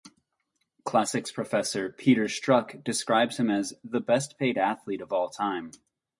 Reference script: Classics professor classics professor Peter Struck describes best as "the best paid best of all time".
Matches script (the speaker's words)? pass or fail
fail